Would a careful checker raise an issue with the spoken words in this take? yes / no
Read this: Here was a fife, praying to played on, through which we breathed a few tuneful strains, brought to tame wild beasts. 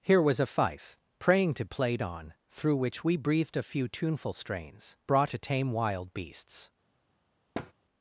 no